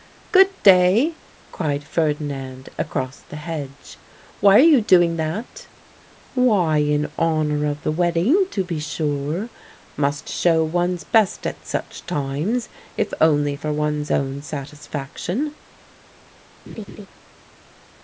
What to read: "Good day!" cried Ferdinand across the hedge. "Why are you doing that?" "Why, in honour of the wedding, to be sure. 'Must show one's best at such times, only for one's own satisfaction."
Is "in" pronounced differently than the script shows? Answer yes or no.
no